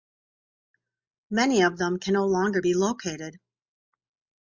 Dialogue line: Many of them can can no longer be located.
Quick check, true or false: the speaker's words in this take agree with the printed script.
false